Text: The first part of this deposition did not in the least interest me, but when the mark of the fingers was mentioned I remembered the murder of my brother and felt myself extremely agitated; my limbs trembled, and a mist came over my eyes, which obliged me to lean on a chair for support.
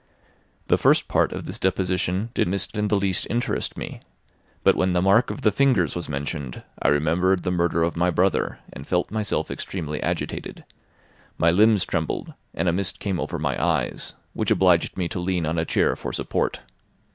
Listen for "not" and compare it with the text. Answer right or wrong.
wrong